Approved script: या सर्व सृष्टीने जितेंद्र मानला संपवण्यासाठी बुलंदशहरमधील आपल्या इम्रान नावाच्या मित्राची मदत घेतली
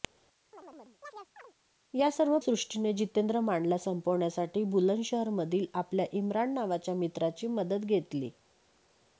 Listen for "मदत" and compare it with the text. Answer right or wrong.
right